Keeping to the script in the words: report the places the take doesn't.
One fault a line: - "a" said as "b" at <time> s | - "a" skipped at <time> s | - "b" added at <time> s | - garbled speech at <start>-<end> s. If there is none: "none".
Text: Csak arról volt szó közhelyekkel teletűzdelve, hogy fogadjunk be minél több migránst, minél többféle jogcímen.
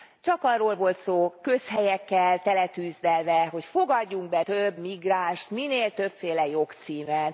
- "minél" skipped at 4.4 s